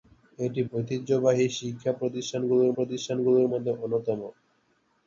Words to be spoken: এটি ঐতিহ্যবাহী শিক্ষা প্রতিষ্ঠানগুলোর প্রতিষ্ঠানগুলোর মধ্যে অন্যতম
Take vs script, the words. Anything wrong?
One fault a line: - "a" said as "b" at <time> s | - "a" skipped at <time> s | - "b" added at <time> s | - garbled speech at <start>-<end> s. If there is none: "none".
none